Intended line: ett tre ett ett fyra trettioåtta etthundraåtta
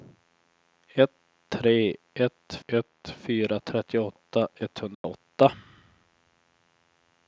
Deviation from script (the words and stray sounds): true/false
true